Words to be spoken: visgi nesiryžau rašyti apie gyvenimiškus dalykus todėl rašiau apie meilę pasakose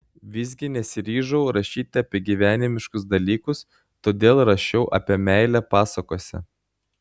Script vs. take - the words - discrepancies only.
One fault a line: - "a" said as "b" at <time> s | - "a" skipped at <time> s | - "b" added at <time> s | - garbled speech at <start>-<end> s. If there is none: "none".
none